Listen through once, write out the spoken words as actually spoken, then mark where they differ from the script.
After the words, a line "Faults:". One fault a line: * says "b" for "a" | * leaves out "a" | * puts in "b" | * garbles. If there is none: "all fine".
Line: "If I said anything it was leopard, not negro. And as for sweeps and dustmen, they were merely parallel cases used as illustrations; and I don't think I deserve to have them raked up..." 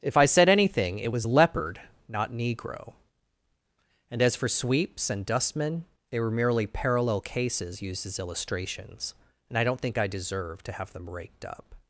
"If I said anything it was leopard, not negro. And as for sweeps and dustmen, they were merely parallel cases used as illustrations; and I don't think I deserve to have them raked up..."
Faults:
all fine